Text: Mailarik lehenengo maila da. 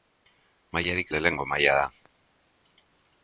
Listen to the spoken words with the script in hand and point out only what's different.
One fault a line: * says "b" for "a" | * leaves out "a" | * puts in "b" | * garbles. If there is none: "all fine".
all fine